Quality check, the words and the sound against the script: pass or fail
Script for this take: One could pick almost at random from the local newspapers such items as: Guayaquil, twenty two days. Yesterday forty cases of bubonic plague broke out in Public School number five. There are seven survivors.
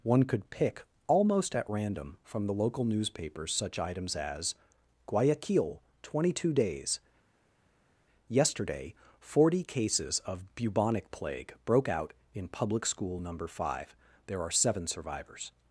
pass